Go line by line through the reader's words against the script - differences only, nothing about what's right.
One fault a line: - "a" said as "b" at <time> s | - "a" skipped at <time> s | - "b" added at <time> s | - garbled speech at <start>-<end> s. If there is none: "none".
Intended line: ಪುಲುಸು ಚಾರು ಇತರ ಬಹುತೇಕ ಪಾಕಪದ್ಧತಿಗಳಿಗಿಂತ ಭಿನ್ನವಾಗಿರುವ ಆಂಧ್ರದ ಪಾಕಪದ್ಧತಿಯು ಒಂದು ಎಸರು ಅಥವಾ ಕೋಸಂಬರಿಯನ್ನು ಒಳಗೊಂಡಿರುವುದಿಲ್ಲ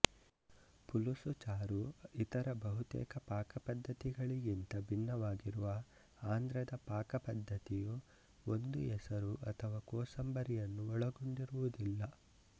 none